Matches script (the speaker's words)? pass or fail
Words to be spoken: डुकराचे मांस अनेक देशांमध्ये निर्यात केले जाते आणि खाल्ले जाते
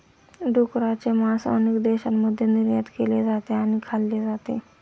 pass